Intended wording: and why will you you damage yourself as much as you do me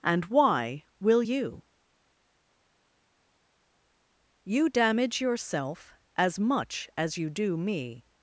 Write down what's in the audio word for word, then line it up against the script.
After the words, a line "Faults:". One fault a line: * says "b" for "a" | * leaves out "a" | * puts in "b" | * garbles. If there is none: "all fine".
and why will you you damage yourself as much as you do me
Faults:
all fine